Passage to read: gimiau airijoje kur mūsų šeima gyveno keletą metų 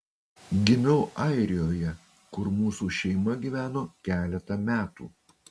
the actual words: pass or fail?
pass